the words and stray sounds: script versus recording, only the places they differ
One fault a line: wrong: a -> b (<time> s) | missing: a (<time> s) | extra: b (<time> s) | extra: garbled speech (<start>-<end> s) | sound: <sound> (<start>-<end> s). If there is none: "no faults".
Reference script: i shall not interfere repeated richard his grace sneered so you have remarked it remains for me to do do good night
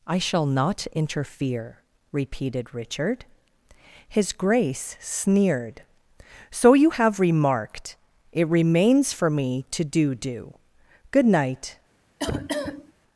sound: cough (12.2-12.9 s)